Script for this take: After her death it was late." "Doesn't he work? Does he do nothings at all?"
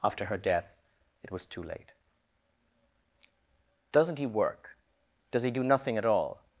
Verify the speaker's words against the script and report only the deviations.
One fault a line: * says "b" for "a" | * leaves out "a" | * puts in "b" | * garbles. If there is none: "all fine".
* puts in "too"
* says "nothing" for "nothings"